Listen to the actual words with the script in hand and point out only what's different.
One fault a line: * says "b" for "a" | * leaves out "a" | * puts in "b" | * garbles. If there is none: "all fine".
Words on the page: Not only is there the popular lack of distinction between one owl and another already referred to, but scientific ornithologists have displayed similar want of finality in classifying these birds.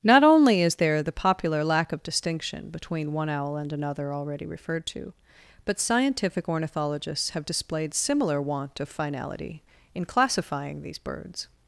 all fine